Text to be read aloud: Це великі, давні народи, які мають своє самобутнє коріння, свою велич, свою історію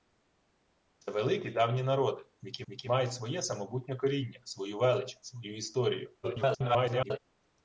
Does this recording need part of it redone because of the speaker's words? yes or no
yes